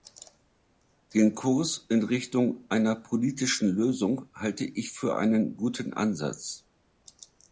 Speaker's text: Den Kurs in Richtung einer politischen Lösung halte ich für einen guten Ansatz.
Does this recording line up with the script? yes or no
yes